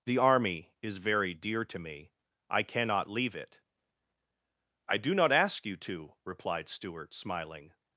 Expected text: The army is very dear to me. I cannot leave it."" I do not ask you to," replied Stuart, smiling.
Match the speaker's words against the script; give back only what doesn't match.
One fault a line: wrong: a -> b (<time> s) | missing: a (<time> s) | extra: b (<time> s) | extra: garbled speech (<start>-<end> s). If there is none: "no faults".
no faults